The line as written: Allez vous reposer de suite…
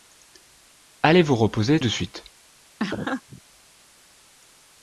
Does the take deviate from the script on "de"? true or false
false